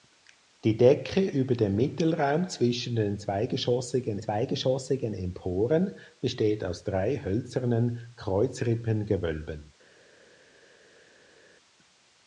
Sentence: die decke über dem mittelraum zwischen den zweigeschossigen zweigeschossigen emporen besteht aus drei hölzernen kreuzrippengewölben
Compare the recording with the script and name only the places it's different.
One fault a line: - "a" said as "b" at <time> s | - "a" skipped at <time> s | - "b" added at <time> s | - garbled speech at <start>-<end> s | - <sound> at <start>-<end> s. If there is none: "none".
none